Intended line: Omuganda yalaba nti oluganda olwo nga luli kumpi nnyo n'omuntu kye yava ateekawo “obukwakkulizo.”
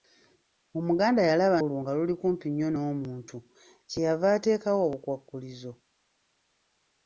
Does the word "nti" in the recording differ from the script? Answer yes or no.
yes